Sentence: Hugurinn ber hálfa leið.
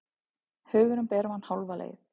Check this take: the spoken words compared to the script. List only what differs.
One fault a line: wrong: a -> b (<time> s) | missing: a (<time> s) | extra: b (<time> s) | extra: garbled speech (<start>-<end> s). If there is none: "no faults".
extra: mann (1.3 s)